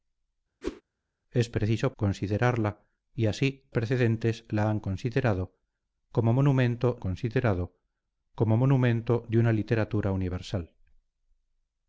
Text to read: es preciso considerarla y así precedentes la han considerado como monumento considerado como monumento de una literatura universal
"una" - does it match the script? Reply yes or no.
yes